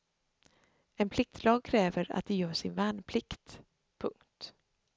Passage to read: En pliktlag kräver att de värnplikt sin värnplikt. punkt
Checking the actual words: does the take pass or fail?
fail